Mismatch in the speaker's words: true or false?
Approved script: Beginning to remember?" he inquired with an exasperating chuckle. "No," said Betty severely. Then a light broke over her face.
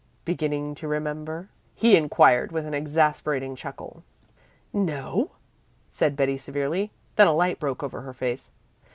false